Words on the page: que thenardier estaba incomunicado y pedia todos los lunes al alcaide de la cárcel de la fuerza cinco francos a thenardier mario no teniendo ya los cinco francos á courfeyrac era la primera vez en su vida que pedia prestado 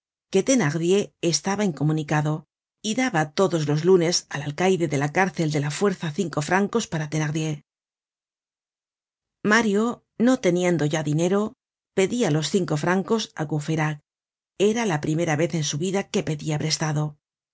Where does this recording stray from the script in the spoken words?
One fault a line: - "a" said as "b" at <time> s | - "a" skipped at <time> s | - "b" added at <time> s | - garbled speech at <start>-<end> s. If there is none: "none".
- "pedia" said as "daba" at 3.0 s
- "a" said as "para" at 6.9 s
- "dinero pedia" added at 11.1 s